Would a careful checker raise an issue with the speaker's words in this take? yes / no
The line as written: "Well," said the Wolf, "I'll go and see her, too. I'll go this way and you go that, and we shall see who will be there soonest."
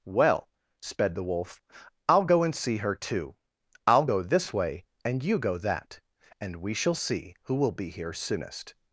yes